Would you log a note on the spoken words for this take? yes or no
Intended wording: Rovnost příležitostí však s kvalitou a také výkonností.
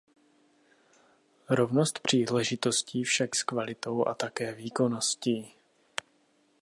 no